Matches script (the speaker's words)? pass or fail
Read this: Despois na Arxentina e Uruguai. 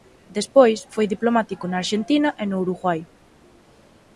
fail